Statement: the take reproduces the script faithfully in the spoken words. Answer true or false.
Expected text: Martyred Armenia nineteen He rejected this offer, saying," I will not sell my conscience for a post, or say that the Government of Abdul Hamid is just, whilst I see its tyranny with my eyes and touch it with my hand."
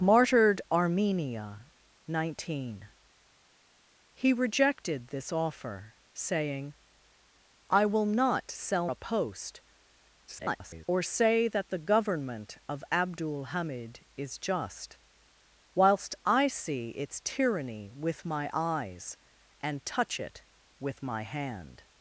false